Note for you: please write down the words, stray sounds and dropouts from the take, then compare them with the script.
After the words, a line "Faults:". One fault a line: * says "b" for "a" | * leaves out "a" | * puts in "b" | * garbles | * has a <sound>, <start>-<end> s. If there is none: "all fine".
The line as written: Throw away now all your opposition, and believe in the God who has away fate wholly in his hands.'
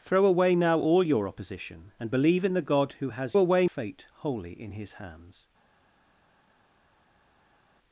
Throw away now all your opposition, and believe in the God who has away fate wholly in his hands.'
Faults:
all fine